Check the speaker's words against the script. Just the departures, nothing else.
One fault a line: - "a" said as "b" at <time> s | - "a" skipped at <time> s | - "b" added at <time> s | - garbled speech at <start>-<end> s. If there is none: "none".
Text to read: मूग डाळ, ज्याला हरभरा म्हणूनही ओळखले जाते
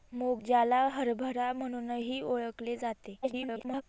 - "डाळ" skipped at 0.4 s
- garbled speech at 3.2-3.8 s